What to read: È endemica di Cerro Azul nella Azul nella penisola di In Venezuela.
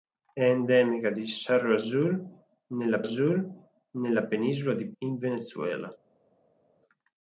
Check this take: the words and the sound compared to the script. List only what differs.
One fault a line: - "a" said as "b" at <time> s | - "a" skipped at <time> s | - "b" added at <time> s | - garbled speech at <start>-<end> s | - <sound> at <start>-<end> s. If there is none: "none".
none